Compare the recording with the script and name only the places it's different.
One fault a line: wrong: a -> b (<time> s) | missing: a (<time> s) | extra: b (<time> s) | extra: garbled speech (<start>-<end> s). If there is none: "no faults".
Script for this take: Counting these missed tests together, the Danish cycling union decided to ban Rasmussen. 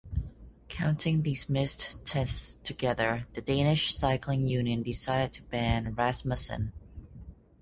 no faults